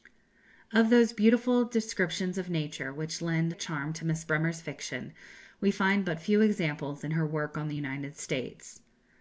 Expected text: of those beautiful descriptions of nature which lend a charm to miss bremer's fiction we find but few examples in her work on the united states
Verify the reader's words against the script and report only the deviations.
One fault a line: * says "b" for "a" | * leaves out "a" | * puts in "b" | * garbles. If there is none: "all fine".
all fine